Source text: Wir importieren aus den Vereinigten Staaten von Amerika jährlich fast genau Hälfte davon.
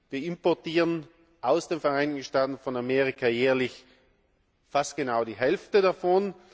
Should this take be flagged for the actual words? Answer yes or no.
yes